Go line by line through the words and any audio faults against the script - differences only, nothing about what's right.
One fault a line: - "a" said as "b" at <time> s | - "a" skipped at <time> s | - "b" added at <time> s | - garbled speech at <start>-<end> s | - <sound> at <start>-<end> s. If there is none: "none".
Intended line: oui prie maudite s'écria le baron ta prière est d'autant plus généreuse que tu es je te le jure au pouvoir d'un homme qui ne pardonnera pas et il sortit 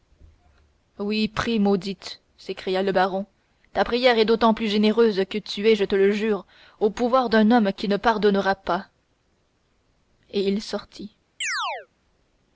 - chirp at 11.4-11.9 s